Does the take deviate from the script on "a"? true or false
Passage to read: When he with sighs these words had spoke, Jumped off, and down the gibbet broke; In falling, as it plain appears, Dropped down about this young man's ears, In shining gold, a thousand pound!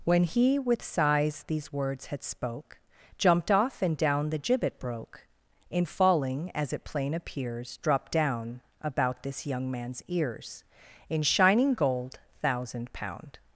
true